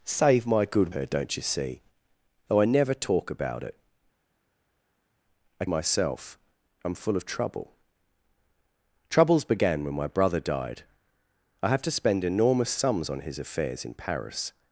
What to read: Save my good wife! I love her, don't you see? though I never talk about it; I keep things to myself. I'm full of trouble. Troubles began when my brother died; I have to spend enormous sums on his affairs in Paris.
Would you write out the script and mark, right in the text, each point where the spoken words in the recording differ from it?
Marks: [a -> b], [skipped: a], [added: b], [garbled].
Save my good [skipped: wife! I love] her, don't you see? though I never talk about it; I [skipped: keep things to] myself. I'm full of trouble. Troubles began when my brother died; I have to spend enormous sums on his affairs in Paris.